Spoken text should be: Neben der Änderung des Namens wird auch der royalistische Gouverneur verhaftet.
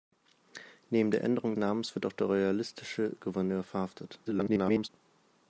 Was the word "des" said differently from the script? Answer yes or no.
yes